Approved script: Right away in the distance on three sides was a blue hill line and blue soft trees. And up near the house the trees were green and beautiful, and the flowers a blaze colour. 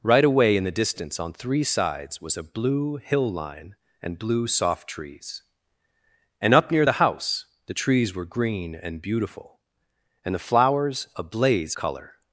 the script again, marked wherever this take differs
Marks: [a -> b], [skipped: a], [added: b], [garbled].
Right away in the distance on three sides was a blue hill line and blue soft trees. And up near the house the trees were green and beautiful, and the flowers a blaze colour.